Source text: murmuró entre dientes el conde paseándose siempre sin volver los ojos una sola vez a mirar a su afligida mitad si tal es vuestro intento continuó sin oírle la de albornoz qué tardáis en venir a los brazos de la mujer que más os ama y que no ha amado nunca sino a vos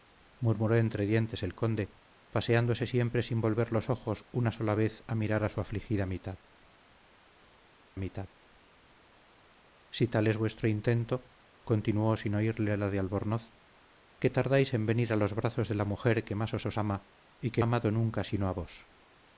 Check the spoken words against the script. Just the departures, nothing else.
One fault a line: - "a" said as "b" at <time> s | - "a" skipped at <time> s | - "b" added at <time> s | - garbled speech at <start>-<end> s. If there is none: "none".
- "mitad" added at 8.0 s
- "os" added at 16.6 s
- "no" skipped at 17.6 s